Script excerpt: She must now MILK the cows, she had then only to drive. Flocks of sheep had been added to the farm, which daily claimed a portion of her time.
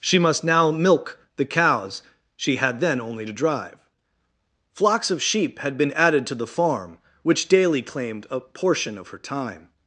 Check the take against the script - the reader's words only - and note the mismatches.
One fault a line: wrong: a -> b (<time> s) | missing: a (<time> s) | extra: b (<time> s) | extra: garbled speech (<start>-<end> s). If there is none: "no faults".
no faults